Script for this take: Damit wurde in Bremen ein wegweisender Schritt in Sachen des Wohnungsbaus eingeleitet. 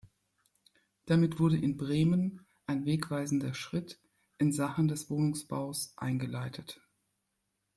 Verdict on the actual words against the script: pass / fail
pass